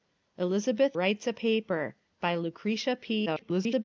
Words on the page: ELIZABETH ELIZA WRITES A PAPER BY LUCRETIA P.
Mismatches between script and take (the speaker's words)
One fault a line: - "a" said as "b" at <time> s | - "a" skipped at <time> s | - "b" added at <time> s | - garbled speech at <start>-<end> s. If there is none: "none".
- "ELIZA" skipped at 1.0 s
- garbled speech at 3.3-3.8 s